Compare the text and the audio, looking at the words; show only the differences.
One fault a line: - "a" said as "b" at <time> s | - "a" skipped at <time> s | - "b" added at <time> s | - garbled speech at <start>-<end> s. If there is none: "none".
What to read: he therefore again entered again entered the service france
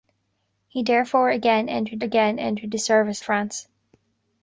none